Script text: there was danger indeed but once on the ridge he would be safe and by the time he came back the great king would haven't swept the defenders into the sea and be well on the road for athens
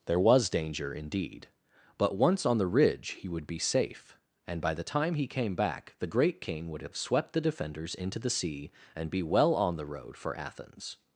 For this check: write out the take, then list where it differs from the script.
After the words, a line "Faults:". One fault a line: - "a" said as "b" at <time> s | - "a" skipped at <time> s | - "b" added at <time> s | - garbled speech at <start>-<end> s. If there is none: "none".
there was danger indeed but once on the ridge he would be safe and by the time he came back the great king would have swept the defenders into the sea and be well on the road for athens
Faults:
- "haven't" said as "have" at 6.8 s